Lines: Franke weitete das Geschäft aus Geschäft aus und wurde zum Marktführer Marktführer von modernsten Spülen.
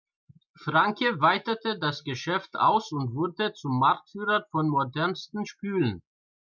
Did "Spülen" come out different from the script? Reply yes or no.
no